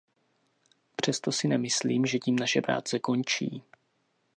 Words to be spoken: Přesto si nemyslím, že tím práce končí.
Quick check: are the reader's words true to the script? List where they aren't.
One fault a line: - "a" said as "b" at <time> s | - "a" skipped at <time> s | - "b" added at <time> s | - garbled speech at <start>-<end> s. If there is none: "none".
- "naše" added at 2.4 s